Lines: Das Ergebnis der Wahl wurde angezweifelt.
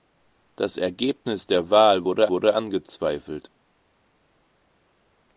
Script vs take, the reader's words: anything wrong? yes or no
yes